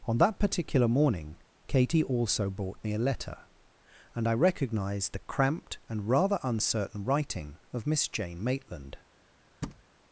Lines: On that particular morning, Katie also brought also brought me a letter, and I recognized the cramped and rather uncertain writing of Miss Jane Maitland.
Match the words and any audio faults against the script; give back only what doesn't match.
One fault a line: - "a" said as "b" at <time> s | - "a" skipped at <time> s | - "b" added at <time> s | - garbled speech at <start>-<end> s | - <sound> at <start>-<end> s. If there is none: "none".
- "also brought" skipped at 2.8 s
- thud at 9.6-9.8 s